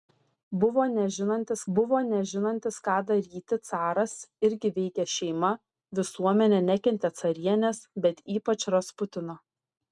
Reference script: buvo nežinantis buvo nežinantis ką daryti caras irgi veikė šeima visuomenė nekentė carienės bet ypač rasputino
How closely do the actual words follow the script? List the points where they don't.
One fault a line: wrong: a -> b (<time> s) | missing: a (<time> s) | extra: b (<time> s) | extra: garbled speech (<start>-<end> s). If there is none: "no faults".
no faults